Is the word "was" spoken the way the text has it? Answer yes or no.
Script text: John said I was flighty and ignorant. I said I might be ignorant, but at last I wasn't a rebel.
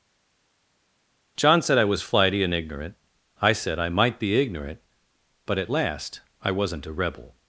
yes